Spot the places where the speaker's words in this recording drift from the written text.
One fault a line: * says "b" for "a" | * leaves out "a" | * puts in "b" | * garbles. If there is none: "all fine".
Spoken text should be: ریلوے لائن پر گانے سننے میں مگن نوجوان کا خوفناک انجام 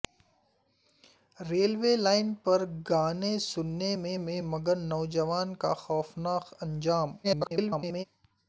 * puts in "میں"
* garbles